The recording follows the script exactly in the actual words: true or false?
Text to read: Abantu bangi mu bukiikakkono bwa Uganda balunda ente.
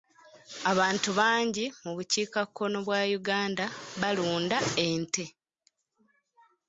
true